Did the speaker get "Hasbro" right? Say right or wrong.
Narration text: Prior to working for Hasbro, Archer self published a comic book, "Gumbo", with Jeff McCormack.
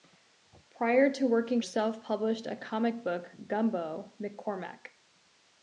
wrong